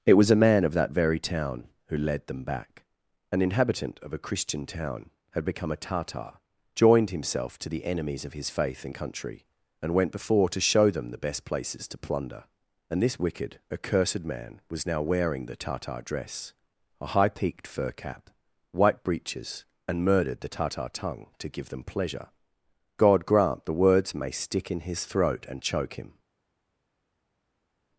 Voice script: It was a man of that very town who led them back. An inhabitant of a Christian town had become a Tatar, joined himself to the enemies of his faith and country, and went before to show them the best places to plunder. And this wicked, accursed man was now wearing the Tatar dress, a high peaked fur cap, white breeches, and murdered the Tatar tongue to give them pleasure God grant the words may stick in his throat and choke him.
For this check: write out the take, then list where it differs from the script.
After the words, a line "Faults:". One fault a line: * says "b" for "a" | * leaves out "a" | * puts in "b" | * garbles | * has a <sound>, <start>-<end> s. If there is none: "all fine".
It was a man of that very town who led them back. An inhabitant of a Christian town had become a Tatar, joined himself to the enemies of his faith and country, and went before to show them the best places to plunder. And this wicked, accursed man was now wearing the Tatar dress, a high peaked fur cap, white breeches, and murdered the Tatar tongue to give them pleasure God grant the words may stick in his throat and choke him.
Faults:
all fine